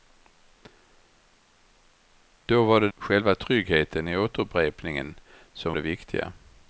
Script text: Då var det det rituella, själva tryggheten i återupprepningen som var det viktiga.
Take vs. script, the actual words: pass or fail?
fail